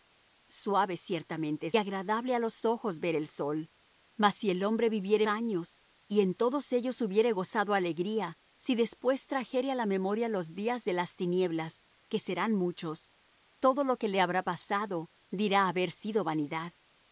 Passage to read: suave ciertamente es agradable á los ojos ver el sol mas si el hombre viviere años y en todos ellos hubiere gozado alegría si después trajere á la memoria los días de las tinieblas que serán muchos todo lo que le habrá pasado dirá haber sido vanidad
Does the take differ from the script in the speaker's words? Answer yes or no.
no